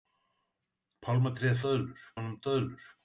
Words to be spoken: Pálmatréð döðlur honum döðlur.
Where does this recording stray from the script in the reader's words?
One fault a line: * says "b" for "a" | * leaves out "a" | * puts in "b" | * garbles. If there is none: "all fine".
all fine